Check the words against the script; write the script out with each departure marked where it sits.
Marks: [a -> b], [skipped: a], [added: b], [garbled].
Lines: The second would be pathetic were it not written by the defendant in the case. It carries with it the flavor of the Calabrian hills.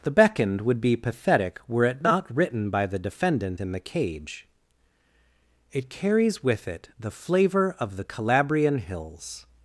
The [second -> beckoned] would be pathetic were it not written by the defendant in the [case. -> cage] It carries with it the flavor of the Calabrian hills.